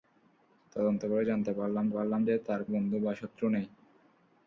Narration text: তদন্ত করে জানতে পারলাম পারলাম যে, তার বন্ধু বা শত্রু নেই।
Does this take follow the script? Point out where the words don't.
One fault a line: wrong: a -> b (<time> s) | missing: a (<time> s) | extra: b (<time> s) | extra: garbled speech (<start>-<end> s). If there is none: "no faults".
no faults